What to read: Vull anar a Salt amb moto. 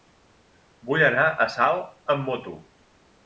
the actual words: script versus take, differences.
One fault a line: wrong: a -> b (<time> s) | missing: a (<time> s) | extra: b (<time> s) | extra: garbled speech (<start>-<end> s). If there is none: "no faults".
no faults